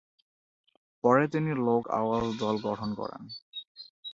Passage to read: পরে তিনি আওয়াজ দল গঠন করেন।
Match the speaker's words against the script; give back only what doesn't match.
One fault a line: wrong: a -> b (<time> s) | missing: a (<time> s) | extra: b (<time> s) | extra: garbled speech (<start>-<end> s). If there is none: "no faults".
extra: লোক (1.7 s)